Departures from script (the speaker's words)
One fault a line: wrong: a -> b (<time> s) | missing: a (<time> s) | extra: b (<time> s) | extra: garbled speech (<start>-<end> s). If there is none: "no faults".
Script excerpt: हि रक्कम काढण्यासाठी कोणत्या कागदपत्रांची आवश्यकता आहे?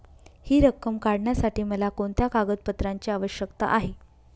extra: मला (1.6 s)